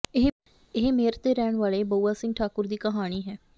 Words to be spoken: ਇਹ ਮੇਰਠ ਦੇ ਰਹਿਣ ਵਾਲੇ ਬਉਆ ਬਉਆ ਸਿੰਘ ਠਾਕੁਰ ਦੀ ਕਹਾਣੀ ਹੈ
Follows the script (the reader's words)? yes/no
no